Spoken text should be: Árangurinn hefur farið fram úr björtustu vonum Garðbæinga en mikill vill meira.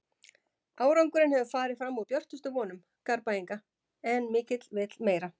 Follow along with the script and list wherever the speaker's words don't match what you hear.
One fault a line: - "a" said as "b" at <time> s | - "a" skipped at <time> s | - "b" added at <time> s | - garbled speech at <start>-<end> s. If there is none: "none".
none